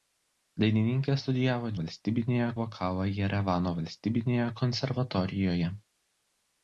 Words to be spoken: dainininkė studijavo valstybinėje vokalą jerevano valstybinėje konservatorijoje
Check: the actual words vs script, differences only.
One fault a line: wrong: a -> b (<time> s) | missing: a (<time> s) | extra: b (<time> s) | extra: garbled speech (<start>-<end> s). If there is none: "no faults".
no faults